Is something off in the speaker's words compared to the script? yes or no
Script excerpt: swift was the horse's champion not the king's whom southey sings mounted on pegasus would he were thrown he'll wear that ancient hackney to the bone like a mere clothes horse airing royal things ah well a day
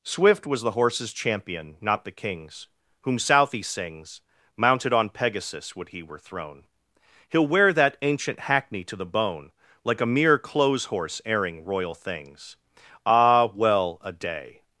no